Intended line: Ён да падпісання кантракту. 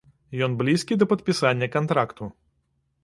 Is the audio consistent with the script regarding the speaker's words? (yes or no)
no